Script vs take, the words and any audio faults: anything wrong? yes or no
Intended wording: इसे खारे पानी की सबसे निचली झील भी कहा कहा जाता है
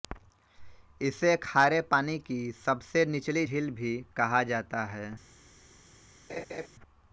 yes